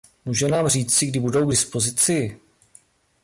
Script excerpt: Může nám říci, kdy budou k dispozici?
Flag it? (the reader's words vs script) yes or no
no